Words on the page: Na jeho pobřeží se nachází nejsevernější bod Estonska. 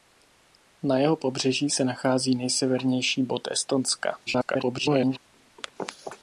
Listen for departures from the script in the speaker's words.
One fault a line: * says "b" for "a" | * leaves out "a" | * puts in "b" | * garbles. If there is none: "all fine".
* garbles